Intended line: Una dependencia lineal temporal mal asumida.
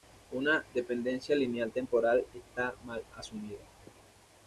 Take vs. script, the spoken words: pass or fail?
fail